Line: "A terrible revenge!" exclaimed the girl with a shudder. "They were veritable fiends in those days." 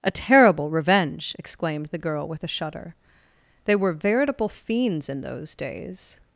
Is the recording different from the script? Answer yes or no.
no